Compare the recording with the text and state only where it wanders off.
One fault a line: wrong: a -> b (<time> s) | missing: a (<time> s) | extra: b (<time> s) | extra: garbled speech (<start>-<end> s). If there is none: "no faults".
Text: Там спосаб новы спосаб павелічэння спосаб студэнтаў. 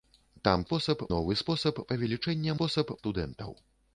no faults